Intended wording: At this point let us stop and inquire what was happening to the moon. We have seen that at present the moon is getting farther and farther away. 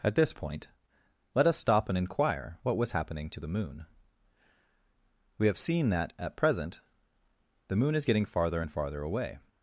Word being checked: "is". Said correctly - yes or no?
yes